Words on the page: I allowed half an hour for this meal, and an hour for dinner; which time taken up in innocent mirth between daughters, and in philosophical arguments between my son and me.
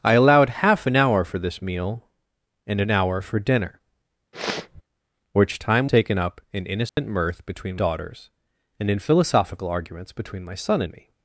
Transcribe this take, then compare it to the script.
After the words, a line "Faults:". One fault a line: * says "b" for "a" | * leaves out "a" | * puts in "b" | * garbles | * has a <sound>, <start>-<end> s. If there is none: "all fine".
I allowed half an hour for this meal, and an hour for dinner; which time taken up in innocent mirth between daughters, and in philosophical arguments between my son and me.
Faults:
* has a sniff, 4.3-4.8 s
* has a dropout, 6.9-7.0 s